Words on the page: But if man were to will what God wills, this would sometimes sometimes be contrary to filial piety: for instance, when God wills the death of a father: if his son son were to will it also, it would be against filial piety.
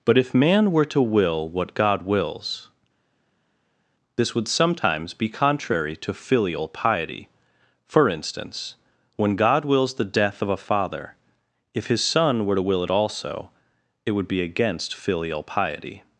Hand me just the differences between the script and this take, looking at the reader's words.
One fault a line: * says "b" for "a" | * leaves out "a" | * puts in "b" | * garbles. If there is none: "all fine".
* leaves out "sometimes"
* leaves out "son"